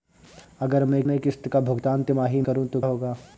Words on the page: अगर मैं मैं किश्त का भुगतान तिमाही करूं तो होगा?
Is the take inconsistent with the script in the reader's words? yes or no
no